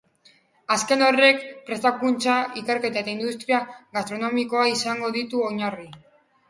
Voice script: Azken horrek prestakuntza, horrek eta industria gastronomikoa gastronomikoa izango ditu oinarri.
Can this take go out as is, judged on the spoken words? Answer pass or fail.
fail